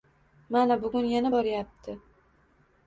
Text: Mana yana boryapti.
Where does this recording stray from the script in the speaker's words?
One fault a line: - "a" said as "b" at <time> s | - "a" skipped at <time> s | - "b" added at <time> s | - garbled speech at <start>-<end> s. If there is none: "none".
- "bugun" added at 0.8 s